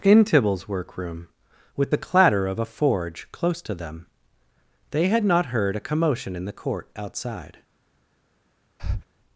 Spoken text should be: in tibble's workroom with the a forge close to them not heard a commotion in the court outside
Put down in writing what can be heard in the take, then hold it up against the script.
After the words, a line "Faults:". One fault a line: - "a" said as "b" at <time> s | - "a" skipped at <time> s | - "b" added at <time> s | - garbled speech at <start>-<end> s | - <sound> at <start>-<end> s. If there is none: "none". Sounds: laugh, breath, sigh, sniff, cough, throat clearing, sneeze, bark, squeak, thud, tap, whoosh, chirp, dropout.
in tibble's workroom with the clatter of a forge close to them they had not heard a commotion in the court outside
Faults:
- "clatter of" added at 2.0 s
- "they had" added at 4.9 s
- breath at 8.8-9.0 s